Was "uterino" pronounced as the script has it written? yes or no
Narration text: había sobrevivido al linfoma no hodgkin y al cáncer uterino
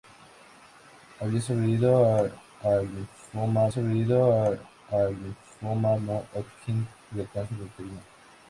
yes